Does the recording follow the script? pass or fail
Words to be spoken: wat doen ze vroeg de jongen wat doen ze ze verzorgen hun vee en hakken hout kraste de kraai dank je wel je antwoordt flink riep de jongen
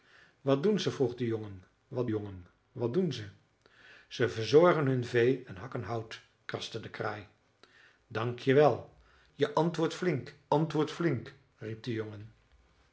fail